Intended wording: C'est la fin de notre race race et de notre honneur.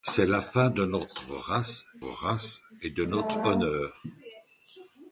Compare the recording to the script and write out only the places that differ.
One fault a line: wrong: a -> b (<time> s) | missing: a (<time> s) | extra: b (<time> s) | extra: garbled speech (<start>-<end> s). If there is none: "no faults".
no faults